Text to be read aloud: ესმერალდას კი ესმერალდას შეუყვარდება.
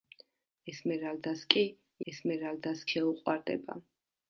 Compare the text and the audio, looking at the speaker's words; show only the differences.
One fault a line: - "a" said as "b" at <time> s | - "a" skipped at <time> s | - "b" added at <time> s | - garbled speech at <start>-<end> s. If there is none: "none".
none